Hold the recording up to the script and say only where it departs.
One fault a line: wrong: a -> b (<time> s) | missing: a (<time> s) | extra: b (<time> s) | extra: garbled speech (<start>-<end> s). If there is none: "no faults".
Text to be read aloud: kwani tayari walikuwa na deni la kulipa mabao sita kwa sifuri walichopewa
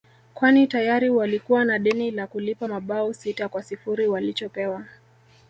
no faults